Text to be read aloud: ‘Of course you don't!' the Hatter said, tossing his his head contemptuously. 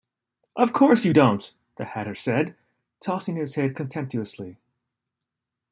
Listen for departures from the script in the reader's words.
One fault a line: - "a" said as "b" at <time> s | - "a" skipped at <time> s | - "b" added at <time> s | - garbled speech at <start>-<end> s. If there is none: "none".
- "his" skipped at 3.5 s